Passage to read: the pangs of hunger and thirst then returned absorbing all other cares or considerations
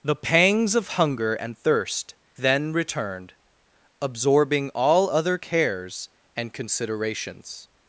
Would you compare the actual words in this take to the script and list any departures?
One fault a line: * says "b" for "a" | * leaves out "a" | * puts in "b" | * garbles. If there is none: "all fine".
* says "and" for "or"